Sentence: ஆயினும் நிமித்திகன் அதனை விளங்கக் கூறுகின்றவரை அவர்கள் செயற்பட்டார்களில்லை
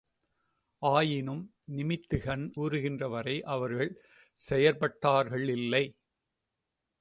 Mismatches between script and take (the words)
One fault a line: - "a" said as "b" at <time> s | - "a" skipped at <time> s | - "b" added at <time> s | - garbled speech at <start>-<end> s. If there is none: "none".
- "அதனை விளங்கக்" skipped at 2.5 s